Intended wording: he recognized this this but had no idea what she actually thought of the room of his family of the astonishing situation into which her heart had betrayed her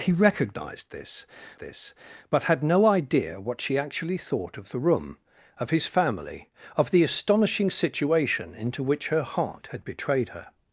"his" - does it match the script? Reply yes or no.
yes